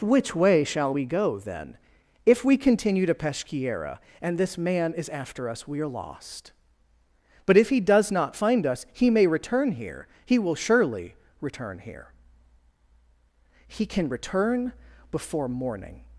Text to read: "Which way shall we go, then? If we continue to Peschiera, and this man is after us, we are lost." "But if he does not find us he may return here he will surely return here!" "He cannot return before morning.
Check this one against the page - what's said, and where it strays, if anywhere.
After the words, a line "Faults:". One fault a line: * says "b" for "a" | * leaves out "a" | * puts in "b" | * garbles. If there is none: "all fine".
"Which way shall we go, then? If we continue to Peschiera, and this man is after us, we are lost." "But if he does not find us he may return here he will surely return here!" "He can return before morning.
Faults:
* says "can" for "cannot"